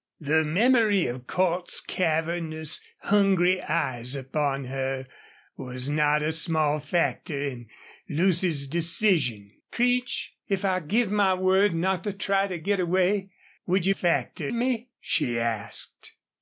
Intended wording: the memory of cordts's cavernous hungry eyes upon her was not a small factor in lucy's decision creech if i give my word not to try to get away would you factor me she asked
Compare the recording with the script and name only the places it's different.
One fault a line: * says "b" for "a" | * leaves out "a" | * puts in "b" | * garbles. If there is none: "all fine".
all fine